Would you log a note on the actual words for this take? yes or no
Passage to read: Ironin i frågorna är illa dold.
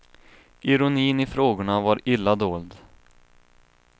yes